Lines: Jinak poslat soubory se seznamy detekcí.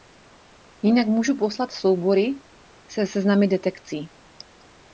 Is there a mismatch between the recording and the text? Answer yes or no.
yes